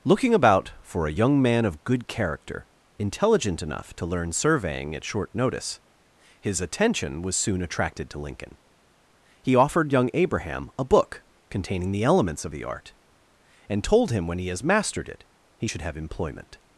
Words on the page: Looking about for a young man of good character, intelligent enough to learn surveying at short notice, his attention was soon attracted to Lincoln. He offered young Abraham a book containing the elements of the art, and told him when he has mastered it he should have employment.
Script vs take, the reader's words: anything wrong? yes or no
no